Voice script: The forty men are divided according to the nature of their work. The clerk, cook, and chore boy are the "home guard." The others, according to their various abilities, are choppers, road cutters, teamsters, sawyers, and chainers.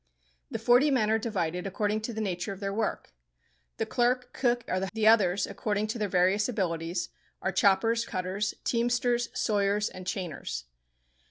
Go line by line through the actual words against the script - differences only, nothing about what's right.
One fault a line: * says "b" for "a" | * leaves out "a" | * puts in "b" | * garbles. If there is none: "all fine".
* leaves out "and chore boy"
* leaves out "home guard"
* leaves out "road"